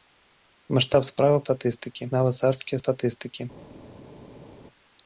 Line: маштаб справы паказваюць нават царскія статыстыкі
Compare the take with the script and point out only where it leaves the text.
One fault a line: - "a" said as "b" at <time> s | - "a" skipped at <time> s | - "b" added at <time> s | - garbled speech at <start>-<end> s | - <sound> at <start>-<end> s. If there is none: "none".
- "паказваюць" said as "статыстыкі" at 1.5 s